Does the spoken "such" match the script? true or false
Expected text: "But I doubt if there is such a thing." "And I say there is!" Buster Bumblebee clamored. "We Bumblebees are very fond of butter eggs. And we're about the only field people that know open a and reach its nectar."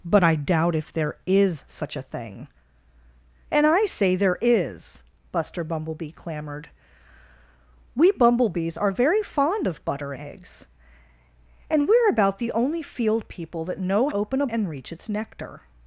true